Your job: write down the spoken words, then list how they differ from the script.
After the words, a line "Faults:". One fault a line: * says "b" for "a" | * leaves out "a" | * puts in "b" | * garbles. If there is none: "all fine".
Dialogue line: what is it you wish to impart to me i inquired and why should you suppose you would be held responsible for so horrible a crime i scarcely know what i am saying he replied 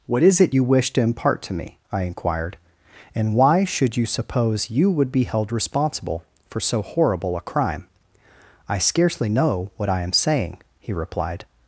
what is it you wish to impart to me i inquired and why should you suppose you would be held responsible for so horrible a crime i scarcely know what i am saying he replied
Faults:
all fine